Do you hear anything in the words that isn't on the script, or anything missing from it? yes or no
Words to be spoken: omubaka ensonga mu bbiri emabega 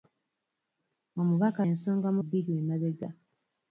no